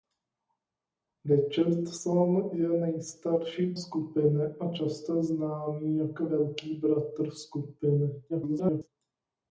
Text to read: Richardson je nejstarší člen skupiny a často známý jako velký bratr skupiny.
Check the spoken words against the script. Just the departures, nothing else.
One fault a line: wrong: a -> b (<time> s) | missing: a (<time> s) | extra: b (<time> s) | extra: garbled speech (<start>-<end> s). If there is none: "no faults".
missing: člen (3.8 s)
extra: garbled speech (8.3-8.9 s)